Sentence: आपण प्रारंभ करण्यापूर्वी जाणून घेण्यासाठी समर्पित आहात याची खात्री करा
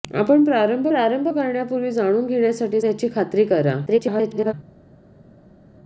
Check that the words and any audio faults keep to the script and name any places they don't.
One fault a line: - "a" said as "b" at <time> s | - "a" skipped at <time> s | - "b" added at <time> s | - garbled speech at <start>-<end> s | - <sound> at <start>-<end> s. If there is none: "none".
- "प्रारंभ" added at 0.9 s
- "समर्पित आहात" skipped at 2.8 s
- garbled speech at 3.9-4.5 s